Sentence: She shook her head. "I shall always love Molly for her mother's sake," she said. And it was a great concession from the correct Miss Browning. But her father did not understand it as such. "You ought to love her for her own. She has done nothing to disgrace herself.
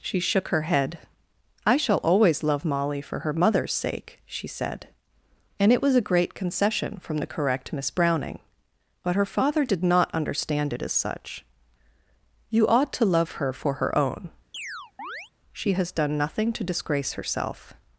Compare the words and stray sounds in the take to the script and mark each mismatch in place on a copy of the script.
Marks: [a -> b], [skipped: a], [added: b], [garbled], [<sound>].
She shook her head. "I shall always love Molly for her mother's sake," she said. And it was a great concession from the correct Miss Browning. But her father did not understand it as such. "You ought to love her for her own. [chirp] She has done nothing to disgrace herself.